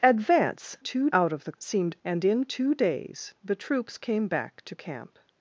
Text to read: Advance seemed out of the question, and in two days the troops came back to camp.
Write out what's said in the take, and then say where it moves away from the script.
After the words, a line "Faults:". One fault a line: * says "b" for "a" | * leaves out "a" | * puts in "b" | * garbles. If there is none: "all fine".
Advance two out of the seemed, and in two days the troops came back to camp.
Faults:
* says "two" for "seemed"
* says "seemed" for "question"